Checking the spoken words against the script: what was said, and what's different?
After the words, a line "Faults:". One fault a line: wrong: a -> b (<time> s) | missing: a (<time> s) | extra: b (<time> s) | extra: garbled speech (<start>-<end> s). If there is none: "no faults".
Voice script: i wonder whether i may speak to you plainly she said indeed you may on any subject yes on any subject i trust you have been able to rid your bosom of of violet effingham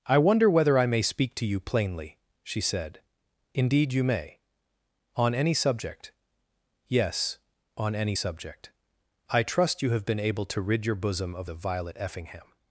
i wonder whether i may speak to you plainly she said indeed you may on any subject yes on any subject i trust you have been able to rid your bosom of of violet effingham
Faults:
no faults